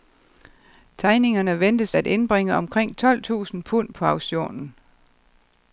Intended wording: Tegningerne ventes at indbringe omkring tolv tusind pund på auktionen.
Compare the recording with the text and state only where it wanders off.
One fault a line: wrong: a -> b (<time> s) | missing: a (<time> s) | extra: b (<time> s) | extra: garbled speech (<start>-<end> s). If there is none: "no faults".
no faults